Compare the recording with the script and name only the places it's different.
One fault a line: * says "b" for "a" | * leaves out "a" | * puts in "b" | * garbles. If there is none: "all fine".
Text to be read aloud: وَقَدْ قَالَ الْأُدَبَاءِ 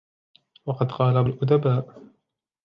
all fine